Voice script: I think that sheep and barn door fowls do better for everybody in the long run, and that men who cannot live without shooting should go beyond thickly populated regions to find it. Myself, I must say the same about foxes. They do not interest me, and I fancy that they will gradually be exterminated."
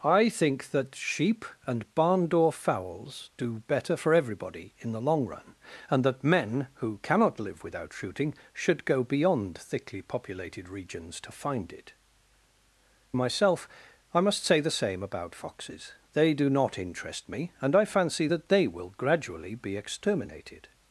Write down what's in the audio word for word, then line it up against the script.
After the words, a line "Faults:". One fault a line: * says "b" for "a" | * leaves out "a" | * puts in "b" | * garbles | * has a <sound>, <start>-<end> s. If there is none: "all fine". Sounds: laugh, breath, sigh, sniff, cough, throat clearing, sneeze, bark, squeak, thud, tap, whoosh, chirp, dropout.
I think that sheep and barn door fowls do better for everybody in the long run, and that men who cannot live without shooting should go beyond thickly populated regions to find it. Myself, I must say the same about foxes. They do not interest me, and I fancy that they will gradually be exterminated."
Faults:
all fine